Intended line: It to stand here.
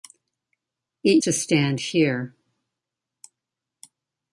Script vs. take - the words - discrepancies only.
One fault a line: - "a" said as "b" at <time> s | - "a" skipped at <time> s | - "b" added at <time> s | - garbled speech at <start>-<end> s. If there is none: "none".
none